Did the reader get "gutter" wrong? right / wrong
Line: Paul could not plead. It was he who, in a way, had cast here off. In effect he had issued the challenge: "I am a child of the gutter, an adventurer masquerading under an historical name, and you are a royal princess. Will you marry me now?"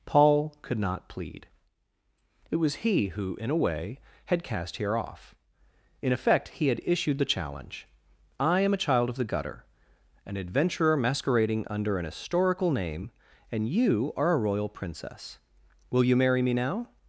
right